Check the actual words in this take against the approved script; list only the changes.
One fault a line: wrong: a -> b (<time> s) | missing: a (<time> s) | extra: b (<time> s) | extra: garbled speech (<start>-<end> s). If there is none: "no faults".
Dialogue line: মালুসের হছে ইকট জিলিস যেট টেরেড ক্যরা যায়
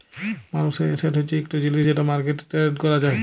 extra: এসেট (0.9 s)
extra: মার্কেটে (2.1 s)